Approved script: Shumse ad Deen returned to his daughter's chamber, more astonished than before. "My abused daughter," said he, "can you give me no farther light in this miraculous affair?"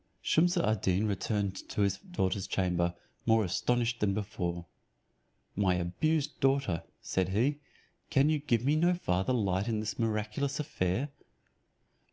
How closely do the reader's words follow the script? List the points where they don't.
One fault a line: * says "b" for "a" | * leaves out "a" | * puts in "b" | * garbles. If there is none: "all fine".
all fine